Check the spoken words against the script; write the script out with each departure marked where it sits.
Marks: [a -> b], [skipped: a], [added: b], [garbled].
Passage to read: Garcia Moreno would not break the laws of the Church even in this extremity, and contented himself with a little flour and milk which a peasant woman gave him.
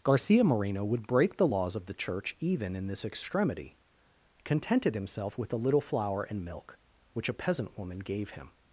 Garcia Moreno would [skipped: not] break the laws of the Church even in this extremity, [skipped: and] contented himself with a little flour and milk which a peasant woman gave him.